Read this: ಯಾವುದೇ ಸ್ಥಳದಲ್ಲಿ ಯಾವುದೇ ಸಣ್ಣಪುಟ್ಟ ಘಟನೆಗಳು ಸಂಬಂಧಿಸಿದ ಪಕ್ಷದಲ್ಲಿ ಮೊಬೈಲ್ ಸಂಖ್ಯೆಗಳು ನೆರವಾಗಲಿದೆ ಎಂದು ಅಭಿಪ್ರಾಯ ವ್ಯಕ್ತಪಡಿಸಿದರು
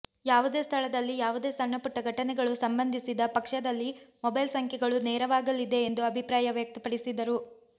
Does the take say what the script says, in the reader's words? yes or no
yes